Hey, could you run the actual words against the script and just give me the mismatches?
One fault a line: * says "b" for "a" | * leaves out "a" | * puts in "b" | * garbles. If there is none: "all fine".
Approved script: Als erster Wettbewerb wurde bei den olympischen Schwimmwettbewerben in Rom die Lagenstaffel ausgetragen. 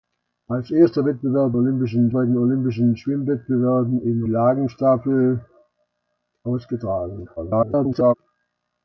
* says "olympischen" for "wurde"
* leaves out "Rom die"
* garbles